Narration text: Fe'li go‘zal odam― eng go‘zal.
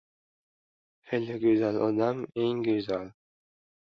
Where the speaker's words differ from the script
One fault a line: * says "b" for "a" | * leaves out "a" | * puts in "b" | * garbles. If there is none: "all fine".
all fine